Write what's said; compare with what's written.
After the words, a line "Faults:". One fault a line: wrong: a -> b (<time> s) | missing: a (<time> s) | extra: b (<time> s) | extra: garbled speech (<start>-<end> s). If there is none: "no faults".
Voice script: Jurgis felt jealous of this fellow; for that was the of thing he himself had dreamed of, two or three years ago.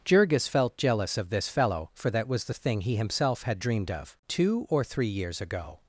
Jurgis felt jealous of this fellow; for that was the of thing he himself had dreamed of, two or three years ago.
Faults:
no faults